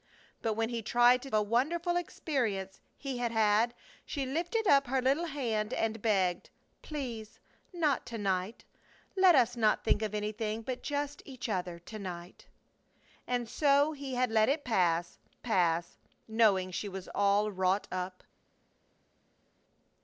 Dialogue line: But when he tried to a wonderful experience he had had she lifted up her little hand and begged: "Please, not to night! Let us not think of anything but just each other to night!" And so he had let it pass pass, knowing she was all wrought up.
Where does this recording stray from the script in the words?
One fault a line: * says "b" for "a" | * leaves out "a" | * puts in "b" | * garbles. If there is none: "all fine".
all fine